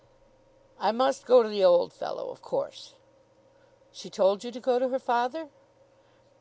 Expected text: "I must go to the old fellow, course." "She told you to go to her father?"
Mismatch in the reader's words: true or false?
true